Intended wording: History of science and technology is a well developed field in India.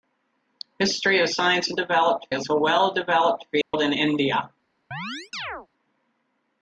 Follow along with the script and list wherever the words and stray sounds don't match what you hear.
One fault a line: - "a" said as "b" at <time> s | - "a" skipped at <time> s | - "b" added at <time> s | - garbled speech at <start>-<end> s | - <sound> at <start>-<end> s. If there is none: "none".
- "technology" said as "developed" at 1.7 s
- dropout at 3.6-3.7 s
- chirp at 4.9-5.7 s